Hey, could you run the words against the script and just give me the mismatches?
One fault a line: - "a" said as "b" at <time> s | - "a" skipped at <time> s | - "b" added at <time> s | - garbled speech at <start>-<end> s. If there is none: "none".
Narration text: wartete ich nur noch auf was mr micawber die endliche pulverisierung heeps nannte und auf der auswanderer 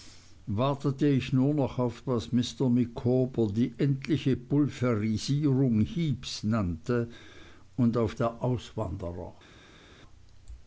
none